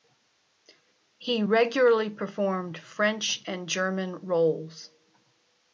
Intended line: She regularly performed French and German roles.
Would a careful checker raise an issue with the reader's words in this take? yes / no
yes